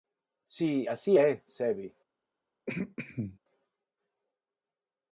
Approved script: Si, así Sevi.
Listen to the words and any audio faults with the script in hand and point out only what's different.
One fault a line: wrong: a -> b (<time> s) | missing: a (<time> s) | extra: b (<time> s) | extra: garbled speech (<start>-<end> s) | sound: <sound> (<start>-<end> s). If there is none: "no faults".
extra: é (1.1 s)
sound: throat clearing (2.7-3.4 s)